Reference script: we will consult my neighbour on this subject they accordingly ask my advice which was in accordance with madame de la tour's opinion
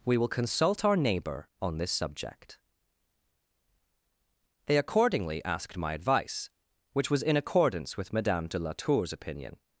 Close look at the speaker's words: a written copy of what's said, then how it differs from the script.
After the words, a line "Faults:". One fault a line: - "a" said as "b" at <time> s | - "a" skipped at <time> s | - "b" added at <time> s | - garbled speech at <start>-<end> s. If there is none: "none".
we will consult our neighbour on this subject they accordingly asked my advice which was in accordance with madame de la tour's opinion
Faults:
- "my" said as "our" at 0.8 s
- "ask" said as "asked" at 5.5 s